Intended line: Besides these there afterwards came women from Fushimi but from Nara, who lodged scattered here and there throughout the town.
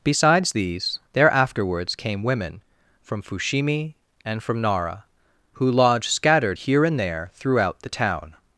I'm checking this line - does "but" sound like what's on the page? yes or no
no